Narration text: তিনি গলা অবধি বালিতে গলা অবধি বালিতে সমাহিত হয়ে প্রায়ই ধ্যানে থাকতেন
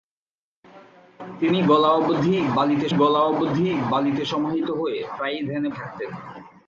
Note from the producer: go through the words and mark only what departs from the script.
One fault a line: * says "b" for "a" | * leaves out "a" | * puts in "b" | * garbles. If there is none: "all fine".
all fine